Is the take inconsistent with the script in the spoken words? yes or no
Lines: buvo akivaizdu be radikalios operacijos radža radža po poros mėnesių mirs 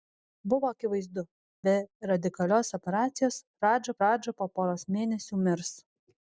no